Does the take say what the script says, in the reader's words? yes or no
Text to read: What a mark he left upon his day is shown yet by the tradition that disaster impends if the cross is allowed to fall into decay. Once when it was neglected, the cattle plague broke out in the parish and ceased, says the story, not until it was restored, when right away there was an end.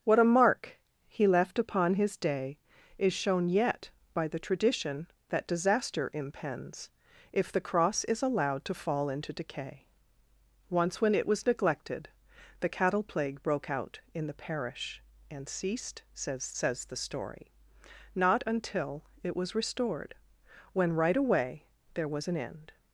no